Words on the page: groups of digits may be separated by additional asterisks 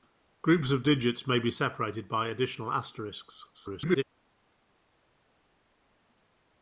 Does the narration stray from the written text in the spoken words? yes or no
yes